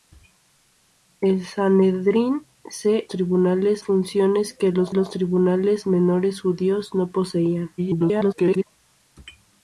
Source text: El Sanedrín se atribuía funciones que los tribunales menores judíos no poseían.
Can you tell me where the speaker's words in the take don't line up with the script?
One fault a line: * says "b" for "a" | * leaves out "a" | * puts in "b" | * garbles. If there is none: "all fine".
* says "tribunales" for "atribuía"
* puts in "los"
* garbles